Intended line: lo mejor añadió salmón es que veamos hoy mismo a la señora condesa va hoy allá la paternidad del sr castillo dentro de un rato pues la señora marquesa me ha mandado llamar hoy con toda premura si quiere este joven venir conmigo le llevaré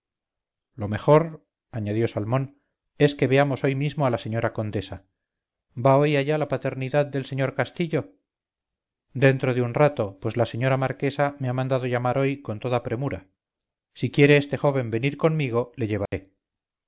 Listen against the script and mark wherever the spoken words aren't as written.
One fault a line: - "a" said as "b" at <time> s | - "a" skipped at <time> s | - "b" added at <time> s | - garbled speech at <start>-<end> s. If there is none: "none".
none